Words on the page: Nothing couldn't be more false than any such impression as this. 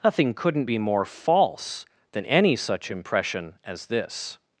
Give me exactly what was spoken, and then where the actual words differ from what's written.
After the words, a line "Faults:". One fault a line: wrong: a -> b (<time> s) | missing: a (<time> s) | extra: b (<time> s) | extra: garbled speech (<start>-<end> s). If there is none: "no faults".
Nothing couldn't be more false than any such impression as this.
Faults:
no faults